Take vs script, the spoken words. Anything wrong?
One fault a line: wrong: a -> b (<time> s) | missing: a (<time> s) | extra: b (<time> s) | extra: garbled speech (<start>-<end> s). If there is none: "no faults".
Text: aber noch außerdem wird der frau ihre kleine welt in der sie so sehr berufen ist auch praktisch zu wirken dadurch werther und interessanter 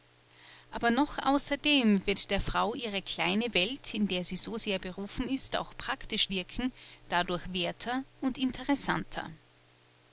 missing: zu (6.3 s)